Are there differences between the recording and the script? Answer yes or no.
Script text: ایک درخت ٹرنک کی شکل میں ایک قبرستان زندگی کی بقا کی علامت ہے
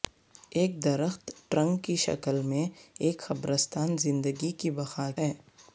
yes